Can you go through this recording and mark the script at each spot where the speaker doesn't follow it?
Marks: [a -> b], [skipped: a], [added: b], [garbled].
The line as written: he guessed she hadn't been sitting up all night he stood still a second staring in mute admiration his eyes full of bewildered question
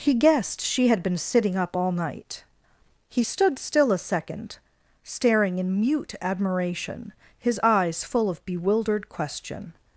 he guessed she [hadn't -> had] been sitting up all night he stood still a second staring in mute admiration his eyes full of bewildered question